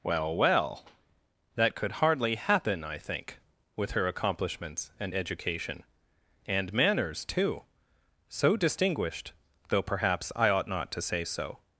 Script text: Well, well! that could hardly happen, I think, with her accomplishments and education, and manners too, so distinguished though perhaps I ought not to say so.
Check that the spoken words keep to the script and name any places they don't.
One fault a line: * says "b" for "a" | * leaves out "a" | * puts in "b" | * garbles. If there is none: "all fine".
all fine